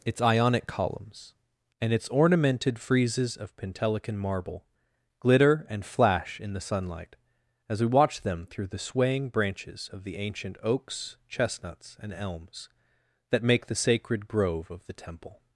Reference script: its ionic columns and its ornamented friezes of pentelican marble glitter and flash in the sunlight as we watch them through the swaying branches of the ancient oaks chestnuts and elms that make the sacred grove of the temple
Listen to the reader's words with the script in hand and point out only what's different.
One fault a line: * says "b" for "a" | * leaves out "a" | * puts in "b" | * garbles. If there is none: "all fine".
all fine